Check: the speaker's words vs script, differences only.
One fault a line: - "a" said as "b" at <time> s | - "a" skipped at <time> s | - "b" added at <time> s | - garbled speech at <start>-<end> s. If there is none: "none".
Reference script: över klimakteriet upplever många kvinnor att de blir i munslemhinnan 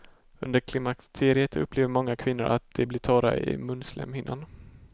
- "över" said as "under" at 0.4 s
- "torra" added at 3.0 s